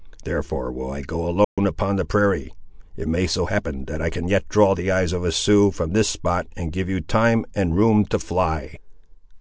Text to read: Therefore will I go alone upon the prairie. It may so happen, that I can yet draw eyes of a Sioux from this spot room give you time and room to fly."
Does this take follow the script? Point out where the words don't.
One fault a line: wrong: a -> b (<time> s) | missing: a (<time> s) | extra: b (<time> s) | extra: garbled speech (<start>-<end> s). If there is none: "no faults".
extra: the (4.7 s)
wrong: room -> and (6.6 s)